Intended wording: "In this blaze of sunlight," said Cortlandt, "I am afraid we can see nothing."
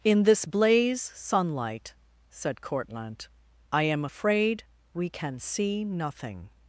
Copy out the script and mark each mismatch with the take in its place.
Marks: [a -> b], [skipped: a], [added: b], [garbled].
"In this blaze [skipped: of] sunlight," said Cortlandt, "I am afraid we can see nothing."